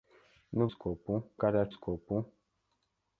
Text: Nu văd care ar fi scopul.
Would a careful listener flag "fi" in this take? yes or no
yes